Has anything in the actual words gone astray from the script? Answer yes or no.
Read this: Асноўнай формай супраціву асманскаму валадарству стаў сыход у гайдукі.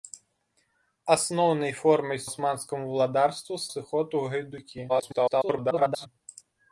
yes